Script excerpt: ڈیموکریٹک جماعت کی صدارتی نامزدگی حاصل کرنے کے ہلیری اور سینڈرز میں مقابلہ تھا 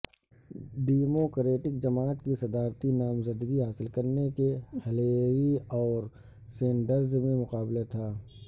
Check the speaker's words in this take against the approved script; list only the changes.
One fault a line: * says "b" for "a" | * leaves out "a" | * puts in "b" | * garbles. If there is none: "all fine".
all fine